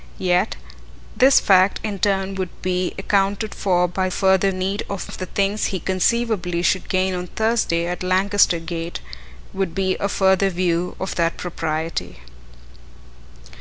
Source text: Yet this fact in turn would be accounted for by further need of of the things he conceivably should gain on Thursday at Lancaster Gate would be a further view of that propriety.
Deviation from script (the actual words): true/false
false